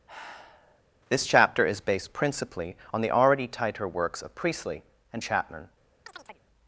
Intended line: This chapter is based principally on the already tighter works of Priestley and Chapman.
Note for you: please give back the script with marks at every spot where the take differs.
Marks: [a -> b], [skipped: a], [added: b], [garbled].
This chapter is based principally on the already tighter works of Priestley and Chapman.